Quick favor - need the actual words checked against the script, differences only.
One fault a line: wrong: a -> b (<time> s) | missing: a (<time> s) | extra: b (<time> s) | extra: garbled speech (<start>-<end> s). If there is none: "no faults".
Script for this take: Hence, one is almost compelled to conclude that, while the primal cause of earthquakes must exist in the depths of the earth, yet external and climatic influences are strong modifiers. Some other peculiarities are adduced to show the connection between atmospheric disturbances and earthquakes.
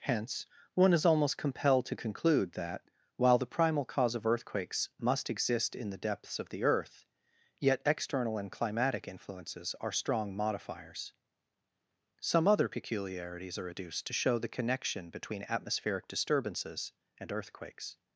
no faults